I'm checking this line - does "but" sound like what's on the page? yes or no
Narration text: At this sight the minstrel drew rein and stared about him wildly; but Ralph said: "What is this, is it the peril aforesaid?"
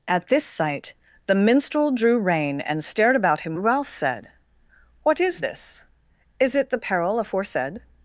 no